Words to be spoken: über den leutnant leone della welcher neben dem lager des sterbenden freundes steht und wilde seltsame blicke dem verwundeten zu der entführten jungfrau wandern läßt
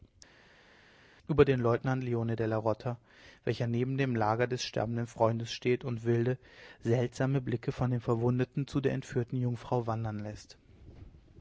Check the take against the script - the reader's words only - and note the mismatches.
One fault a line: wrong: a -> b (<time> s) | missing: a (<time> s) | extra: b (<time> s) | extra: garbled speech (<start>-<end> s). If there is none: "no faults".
extra: rota (2.6 s)
extra: von (7.7 s)